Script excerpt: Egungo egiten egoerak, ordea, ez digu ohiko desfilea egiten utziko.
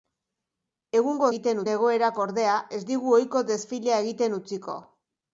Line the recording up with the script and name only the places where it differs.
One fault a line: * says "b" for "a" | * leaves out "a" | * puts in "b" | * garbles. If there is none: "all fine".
all fine